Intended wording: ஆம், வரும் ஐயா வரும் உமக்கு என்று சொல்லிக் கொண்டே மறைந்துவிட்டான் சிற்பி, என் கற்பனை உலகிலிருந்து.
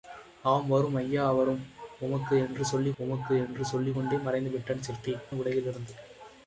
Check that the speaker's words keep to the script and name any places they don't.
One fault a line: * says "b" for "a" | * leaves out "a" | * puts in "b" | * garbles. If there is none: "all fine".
* puts in "உமக்கு என்று சொல்லிக்"
* leaves out "என் கற்பனை"